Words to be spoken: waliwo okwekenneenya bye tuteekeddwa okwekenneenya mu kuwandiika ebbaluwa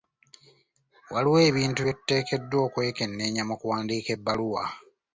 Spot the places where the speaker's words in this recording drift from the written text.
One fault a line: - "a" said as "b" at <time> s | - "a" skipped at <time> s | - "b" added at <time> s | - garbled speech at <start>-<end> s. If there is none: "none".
- "okwekenneenya" said as "ebintu" at 1.5 s